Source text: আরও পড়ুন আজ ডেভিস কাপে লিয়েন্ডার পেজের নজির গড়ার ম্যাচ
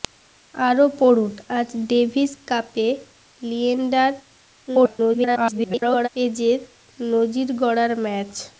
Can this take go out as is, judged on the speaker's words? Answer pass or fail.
fail